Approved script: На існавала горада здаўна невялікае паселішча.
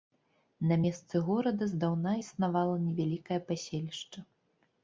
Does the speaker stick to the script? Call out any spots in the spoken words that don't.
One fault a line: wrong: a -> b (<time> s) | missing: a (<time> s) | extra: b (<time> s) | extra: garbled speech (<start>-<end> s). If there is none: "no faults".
wrong: існавала -> месцы (0.8 s)
extra: існавала (2.2 s)